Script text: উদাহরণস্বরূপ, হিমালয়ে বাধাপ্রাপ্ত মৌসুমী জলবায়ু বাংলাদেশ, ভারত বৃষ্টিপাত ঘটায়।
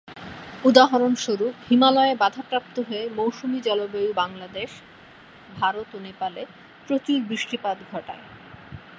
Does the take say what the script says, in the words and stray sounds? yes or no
no